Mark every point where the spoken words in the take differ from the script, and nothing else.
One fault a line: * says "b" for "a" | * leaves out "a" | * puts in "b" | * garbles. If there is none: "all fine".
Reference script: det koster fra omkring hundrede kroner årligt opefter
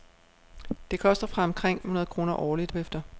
all fine